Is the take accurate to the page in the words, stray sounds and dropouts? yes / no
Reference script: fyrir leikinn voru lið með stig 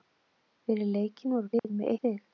no